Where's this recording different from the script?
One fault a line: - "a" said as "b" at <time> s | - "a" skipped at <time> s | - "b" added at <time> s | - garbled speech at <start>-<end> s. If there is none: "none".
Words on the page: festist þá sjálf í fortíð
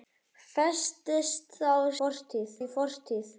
- "sjálf" said as "fortíð" at 2.0 s